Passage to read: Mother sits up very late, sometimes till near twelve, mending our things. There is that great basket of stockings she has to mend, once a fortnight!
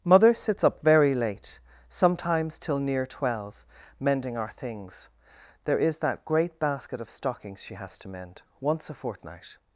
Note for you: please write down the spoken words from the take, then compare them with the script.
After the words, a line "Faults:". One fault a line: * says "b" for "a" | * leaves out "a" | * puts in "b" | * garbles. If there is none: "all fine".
Mother sits up very late, sometimes till near twelve, mending our things. There is that great basket of stockings she has to mend, once a fortnight!
Faults:
all fine